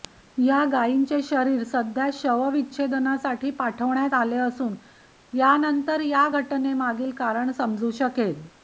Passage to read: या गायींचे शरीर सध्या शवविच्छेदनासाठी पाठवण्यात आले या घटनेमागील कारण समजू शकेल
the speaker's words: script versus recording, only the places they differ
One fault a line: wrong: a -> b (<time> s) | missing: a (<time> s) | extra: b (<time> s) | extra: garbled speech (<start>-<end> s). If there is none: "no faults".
extra: असून यानंतर (4.4 s)